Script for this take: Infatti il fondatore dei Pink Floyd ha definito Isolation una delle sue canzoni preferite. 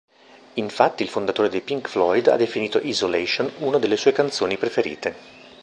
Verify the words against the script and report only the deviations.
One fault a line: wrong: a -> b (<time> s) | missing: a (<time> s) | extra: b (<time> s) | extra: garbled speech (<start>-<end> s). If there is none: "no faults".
no faults